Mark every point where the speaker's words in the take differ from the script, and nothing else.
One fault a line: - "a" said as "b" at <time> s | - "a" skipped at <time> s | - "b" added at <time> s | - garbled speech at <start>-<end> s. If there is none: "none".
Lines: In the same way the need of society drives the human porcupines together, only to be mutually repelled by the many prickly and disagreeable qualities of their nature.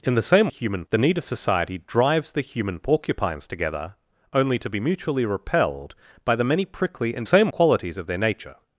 - "way" said as "human" at 0.5 s
- "disagreeable" said as "same" at 7.2 s